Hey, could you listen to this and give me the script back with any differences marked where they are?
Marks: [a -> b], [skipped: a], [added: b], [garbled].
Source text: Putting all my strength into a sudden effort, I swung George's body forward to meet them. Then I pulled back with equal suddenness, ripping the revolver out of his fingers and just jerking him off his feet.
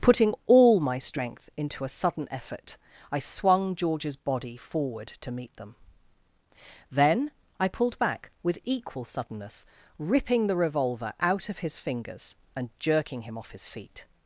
Putting all my strength into a sudden effort, I swung George's body forward to meet them. Then I pulled back with equal suddenness, ripping the revolver out of his fingers and [skipped: just] jerking him off his feet.